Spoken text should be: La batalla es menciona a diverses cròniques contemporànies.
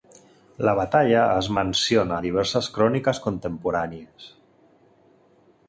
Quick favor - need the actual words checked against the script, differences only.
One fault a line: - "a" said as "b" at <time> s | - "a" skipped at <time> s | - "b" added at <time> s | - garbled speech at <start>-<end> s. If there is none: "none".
none